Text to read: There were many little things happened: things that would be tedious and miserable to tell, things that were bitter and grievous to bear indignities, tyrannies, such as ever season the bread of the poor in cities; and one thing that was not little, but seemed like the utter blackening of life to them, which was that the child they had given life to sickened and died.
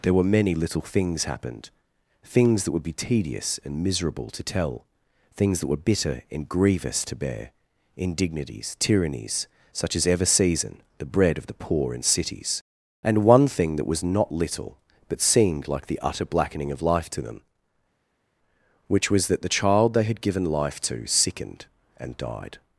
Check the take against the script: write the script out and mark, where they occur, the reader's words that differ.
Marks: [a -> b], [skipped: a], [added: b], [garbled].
There were many little things happened: things that would be tedious and miserable to tell, things that were bitter and grievous to bear indignities, tyrannies, such as ever season the bread of the poor in cities; and one thing that was not little, but seemed like the utter blackening of life to them, which was that the child they had given life to sickened and died.